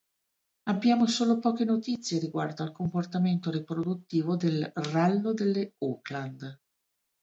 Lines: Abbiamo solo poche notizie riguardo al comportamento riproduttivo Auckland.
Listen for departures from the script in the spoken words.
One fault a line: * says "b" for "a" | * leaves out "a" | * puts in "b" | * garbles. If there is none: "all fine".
* puts in "del rallo delle"